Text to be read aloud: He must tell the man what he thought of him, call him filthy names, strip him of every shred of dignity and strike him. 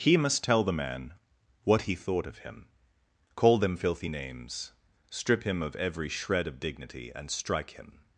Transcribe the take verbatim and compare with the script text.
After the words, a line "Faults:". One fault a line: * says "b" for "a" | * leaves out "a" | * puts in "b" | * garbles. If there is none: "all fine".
He must tell the man what he thought of him, call them filthy names, strip him of every shred of dignity and strike him.
Faults:
* says "them" for "him"